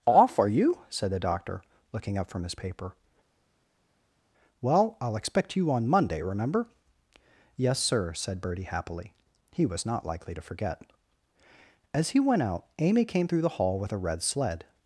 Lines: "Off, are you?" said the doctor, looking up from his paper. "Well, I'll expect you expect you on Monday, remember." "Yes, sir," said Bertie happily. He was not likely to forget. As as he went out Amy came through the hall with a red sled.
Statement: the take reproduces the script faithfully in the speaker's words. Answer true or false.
false